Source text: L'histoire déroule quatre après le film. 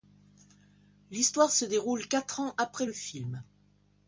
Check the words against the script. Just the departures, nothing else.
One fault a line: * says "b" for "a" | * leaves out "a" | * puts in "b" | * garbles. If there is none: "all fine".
* puts in "se"
* puts in "ans"